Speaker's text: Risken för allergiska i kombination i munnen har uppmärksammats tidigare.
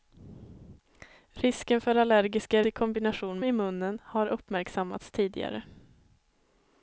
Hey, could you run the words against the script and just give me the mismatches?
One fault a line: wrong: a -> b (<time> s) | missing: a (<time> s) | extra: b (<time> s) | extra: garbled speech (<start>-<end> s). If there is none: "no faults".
no faults